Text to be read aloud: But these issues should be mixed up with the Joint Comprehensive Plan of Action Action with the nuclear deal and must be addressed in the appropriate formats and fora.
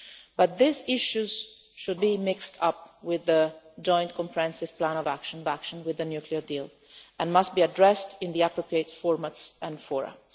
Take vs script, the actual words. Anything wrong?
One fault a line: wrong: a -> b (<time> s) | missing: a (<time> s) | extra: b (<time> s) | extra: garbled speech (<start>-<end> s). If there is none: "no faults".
no faults